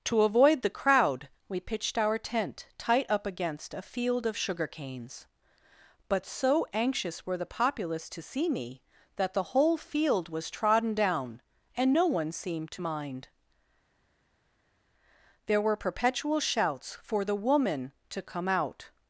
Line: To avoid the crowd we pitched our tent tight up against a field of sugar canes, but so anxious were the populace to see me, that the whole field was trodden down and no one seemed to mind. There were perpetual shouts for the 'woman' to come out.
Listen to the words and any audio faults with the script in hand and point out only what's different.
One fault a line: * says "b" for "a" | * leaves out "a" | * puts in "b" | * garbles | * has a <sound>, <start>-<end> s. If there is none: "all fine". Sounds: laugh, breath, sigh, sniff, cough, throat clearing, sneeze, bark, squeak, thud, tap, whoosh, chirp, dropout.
all fine